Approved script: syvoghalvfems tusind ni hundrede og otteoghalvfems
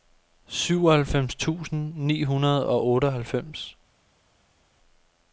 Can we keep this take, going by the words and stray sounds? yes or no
yes